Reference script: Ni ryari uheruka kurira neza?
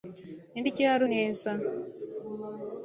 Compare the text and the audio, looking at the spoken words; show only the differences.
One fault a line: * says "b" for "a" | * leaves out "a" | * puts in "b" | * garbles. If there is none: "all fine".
* leaves out "uheruka kurira"